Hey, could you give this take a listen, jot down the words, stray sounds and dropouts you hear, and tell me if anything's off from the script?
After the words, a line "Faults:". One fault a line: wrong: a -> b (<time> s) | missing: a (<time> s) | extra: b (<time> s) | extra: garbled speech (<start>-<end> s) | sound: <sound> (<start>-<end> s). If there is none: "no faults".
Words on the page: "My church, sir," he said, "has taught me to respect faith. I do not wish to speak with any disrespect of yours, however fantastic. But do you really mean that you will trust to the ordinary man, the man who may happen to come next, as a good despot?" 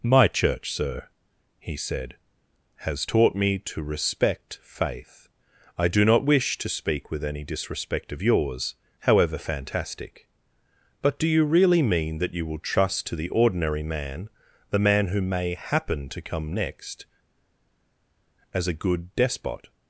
"My church, sir," he said, "has taught me to respect faith. I do not wish to speak with any disrespect of yours, however fantastic. But do you really mean that you will trust to the ordinary man, the man who may happen to come next, as a good despot?"
Faults:
no faults